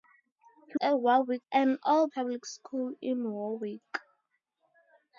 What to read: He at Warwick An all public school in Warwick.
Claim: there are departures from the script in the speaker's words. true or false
false